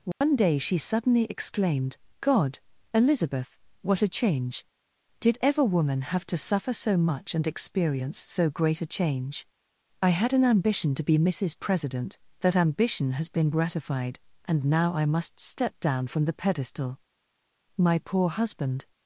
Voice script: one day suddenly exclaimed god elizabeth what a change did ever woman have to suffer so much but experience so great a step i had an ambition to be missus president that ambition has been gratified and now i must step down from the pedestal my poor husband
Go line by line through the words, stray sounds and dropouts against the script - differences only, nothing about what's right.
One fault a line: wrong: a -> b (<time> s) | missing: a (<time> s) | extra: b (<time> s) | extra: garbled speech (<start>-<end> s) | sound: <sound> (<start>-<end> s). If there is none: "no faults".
sound: dropout (0.1-0.2 s)
extra: she (0.6 s)
wrong: but -> and (7.3 s)
wrong: step -> change (8.9 s)